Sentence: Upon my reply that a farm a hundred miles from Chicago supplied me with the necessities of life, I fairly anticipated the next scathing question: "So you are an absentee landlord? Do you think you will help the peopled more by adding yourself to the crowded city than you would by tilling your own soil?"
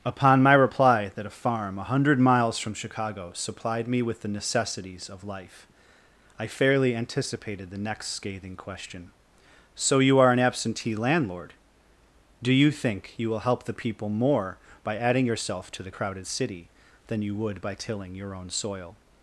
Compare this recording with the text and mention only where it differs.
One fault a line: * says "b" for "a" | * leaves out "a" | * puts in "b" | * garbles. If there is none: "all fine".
* says "people" for "peopled"